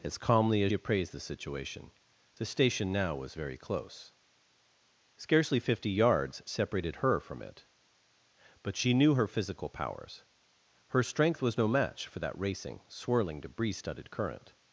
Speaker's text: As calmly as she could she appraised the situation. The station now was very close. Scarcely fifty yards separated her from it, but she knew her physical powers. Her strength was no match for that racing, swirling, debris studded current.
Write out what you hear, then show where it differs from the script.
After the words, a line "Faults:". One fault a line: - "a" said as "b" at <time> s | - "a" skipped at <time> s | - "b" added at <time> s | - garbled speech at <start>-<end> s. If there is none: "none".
As calmly as appraised the situation. The station now was very close. Scarcely fifty yards separated her from it, but she knew her physical powers. Her strength was no match for that racing, swirling, debris studded current.
Faults:
- "she could she" skipped at 0.7 s